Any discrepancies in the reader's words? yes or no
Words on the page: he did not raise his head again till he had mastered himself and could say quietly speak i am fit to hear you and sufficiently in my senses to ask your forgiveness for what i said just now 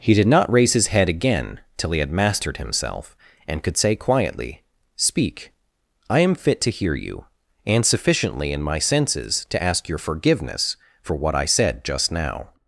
no